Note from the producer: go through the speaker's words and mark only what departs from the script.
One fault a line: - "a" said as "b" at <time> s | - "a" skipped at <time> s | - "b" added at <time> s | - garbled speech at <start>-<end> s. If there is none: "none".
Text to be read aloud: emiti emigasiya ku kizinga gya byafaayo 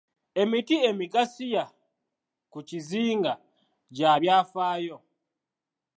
none